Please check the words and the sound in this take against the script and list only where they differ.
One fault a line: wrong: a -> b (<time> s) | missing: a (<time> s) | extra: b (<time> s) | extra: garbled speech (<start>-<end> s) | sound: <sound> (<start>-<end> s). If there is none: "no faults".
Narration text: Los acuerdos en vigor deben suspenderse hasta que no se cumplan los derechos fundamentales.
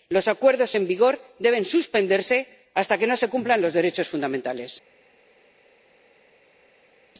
no faults